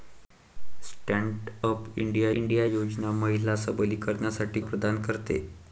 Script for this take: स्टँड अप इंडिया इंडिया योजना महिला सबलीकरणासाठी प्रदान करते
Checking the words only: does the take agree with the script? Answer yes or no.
yes